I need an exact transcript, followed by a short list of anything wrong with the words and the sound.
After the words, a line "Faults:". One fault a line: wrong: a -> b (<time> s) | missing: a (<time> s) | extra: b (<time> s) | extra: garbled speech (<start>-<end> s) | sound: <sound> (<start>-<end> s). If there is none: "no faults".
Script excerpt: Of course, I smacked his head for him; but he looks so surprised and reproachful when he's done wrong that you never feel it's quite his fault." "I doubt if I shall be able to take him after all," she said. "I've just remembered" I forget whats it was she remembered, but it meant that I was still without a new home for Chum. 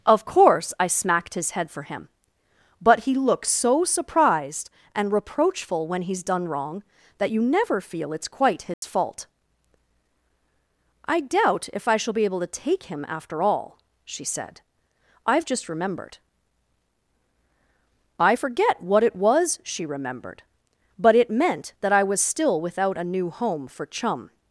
Of course, I smacked his head for him; but he looks so surprised and reproachful when he's done wrong that you never feel it's quite his fault." "I doubt if I shall be able to take him after all," she said. "I've just remembered" I forget what it was she remembered, but it meant that I was still without a new home for Chum.
Faults:
sound: dropout (8.7-8.8 s)
wrong: whats -> what (18.8 s)